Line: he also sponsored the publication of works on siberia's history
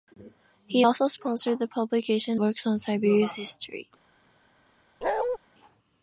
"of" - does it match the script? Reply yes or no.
no